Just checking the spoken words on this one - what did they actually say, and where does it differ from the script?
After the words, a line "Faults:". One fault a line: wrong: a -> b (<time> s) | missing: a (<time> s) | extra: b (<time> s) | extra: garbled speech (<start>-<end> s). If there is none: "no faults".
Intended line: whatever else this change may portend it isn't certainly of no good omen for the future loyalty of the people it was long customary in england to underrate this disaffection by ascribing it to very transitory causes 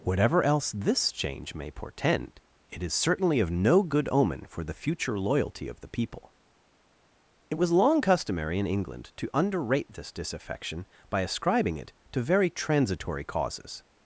whatever else this change may portend it is certainly of no good omen for the future loyalty of the people it was long customary in england to underrate this disaffection by ascribing it to very transitory causes
Faults:
wrong: isn't -> is (2.8 s)